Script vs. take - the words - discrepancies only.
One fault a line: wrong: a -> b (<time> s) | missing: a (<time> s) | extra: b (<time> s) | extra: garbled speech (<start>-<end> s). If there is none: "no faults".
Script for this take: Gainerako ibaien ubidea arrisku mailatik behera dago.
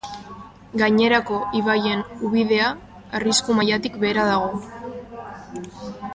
no faults